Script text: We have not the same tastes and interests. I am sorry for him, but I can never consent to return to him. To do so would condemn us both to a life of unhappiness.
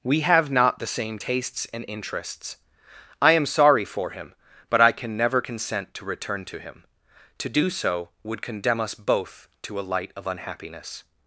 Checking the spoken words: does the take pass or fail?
fail